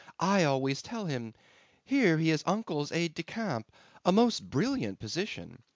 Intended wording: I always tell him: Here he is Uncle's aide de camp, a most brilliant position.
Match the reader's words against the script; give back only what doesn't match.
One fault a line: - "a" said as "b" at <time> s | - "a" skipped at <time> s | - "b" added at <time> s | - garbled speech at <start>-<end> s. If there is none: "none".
none